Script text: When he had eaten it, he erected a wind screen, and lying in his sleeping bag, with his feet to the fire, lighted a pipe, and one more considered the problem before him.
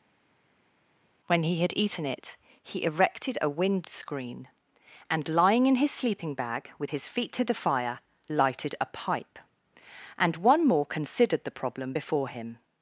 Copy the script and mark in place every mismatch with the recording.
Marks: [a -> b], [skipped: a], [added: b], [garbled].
When he had eaten it, he erected a wind screen, and lying in his sleeping bag, with his feet to the fire, lighted a pipe, and one more considered the problem before him.